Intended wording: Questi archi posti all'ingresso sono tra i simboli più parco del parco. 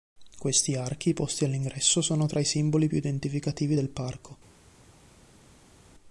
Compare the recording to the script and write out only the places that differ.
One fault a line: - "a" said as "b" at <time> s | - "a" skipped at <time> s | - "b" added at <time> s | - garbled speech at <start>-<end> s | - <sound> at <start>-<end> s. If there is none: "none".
- "parco" said as "identificativi" at 3.0 s